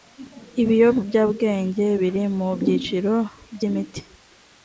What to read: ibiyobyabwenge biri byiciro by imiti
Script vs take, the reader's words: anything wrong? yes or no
yes